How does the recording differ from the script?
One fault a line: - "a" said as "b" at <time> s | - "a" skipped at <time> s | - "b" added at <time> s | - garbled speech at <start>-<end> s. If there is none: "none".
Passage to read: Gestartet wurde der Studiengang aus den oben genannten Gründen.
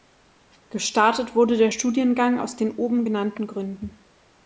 none